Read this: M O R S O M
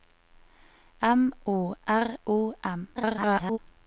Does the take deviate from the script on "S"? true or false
true